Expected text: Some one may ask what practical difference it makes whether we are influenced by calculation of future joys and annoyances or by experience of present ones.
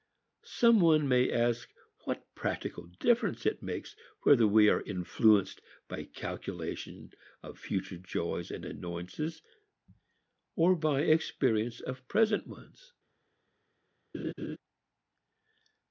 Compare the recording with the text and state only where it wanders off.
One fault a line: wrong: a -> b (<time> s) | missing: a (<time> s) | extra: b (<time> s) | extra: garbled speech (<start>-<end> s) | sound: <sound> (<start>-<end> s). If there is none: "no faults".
sound: laugh (14.1-14.6 s)